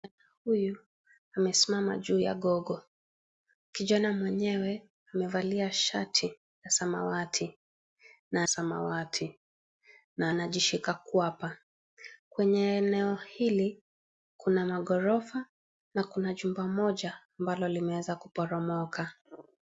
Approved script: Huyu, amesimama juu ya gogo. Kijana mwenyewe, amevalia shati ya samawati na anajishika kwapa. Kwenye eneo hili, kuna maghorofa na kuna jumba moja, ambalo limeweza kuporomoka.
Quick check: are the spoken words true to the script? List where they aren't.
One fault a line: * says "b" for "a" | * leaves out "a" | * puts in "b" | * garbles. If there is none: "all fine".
* puts in "samawati na"